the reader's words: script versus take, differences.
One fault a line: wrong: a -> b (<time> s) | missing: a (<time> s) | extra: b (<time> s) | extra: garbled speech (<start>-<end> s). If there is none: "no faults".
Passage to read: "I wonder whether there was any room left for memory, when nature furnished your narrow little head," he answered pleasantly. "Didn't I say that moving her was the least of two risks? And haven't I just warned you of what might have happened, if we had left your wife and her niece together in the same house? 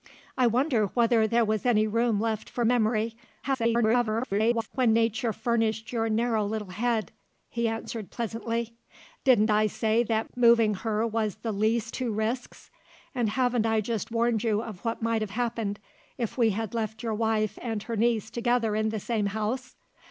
extra: garbled speech (3.4-4.7 s)
missing: of (12.0 s)